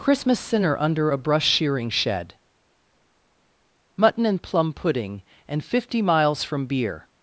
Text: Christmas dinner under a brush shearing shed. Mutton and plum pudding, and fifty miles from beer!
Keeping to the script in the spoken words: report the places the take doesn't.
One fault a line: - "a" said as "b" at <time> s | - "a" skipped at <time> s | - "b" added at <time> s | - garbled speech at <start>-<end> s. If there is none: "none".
- "dinner" said as "sinner" at 0.4 s